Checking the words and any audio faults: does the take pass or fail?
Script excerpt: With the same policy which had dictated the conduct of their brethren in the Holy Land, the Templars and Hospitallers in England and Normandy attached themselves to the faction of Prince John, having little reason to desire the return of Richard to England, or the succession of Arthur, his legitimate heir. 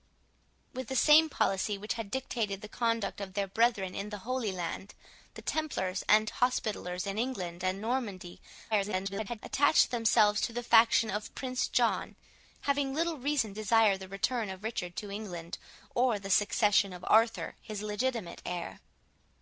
fail